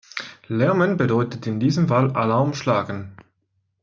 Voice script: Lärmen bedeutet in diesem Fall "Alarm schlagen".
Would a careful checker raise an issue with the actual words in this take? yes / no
no